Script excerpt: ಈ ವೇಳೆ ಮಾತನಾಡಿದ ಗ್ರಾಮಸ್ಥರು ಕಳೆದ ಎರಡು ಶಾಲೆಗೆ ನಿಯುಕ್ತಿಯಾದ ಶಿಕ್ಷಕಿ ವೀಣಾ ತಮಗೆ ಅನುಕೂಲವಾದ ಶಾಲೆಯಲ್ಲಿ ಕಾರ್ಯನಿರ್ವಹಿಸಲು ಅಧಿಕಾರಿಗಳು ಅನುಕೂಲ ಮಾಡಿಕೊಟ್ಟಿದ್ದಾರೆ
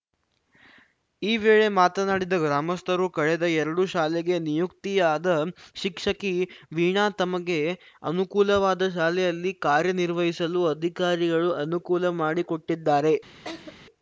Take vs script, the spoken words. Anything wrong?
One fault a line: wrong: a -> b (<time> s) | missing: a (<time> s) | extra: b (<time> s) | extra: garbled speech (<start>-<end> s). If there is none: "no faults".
no faults